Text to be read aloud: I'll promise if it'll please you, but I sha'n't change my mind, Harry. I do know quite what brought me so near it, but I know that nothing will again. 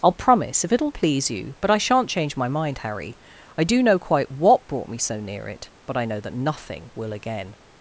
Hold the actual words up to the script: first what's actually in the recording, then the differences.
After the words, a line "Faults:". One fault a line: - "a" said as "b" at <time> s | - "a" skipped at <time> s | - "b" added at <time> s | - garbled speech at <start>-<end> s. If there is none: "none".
I'll promise if it'll please you, but I sha'n't change my mind, Harry. I do know quite what brought me so near it, but I know that nothing will again.
Faults:
none